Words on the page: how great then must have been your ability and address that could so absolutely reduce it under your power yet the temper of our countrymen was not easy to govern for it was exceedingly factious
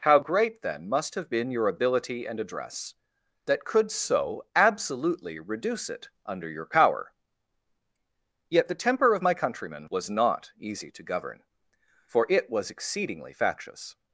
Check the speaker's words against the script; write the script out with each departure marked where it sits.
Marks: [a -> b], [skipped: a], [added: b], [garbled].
how great then must have been your ability and address that could so absolutely reduce it under your power yet the temper of [our -> my] countrymen was not easy to govern for it was exceedingly factious